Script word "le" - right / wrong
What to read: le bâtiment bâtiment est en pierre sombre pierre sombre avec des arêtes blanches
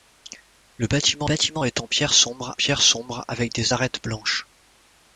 right